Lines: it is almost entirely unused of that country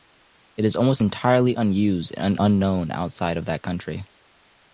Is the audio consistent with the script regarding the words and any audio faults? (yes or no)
no